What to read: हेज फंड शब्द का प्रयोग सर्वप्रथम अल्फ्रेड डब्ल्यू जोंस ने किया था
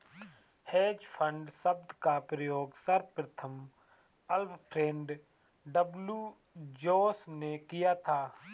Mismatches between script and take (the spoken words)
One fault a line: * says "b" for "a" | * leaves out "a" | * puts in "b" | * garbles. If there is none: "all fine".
all fine